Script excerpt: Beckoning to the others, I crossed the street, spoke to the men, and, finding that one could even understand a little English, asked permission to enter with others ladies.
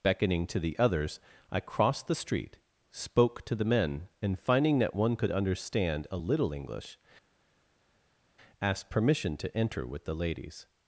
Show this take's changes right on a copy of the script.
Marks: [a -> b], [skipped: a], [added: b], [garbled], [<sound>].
Beckoning to the others, I crossed the street, spoke to the men, and, finding that one could [skipped: even] understand a little English, asked permission to enter with [others -> the] ladies.